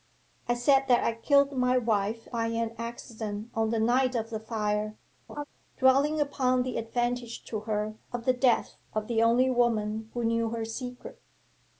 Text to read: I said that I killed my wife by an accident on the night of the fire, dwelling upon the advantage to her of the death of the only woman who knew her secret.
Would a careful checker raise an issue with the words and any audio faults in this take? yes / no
yes